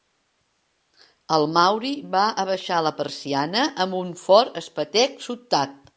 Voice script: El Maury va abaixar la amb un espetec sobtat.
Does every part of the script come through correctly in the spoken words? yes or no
no